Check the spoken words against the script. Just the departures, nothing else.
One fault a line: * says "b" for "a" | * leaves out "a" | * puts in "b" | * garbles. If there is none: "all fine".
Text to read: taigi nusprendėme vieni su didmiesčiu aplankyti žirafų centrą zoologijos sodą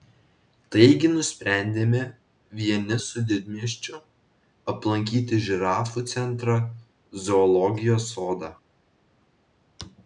all fine